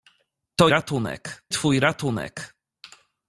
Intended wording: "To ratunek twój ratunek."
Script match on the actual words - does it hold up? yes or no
yes